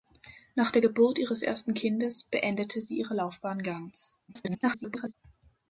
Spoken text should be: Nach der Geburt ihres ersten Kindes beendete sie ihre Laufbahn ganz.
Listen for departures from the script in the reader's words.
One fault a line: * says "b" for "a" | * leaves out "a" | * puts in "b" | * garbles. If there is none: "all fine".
* garbles